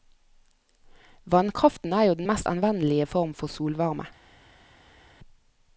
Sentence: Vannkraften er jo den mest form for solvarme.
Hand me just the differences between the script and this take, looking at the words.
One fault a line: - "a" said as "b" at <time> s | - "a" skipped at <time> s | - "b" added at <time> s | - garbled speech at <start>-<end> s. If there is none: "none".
- "anvendelige" added at 2.4 s